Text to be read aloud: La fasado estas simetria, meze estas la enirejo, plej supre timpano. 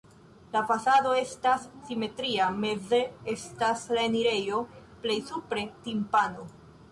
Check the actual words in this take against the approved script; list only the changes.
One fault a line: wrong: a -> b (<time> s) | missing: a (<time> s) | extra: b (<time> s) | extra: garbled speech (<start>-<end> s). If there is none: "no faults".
no faults